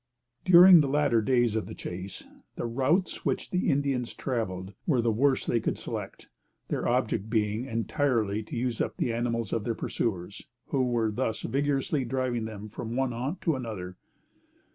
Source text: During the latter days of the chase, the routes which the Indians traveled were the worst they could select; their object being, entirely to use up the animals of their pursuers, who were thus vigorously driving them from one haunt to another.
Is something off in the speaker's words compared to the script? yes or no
no